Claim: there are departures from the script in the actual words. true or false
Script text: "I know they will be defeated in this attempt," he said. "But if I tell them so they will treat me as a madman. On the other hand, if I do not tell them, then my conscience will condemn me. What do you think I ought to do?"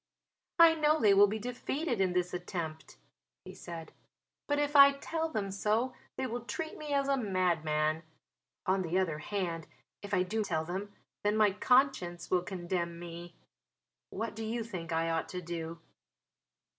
true